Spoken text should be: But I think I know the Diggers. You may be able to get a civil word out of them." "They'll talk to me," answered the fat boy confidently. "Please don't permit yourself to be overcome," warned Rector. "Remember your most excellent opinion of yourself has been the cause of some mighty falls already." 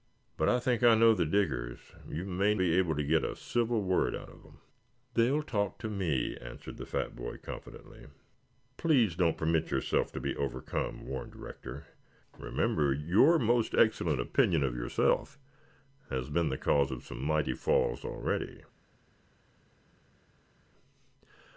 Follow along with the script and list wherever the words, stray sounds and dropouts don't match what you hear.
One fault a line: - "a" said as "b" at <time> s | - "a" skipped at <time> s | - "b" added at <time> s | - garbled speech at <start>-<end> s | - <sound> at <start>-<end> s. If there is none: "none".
none